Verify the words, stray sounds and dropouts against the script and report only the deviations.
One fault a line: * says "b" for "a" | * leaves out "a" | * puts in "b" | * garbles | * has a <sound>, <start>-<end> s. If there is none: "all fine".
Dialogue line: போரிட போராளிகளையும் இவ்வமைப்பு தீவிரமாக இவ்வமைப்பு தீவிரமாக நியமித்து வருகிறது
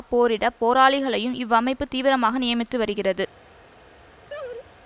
* leaves out "இவ்வமைப்பு தீவிரமாக"
* has a laugh, 4.3-4.7 s